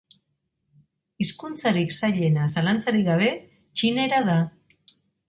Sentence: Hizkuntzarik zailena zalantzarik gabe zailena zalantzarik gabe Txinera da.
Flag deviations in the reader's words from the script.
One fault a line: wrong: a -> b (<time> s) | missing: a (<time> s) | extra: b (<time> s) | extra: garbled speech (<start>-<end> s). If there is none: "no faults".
missing: zailena zalantzarik gabe (3.3 s)